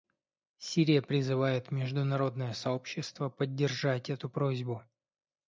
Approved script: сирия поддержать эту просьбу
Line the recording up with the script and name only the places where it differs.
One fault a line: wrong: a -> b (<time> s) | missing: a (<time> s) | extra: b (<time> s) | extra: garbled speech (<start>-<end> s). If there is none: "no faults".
extra: призывает международное сообщество (1.0 s)